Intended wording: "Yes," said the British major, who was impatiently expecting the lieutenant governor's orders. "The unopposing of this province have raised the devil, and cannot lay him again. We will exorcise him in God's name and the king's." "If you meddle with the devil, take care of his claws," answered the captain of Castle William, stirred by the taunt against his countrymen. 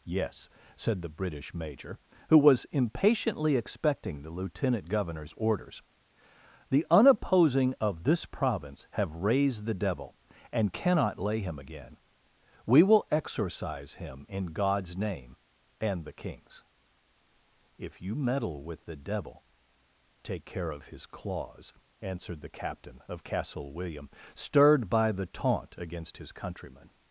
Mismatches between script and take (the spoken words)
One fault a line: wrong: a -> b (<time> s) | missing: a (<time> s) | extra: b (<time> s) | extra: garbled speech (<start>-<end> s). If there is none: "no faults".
no faults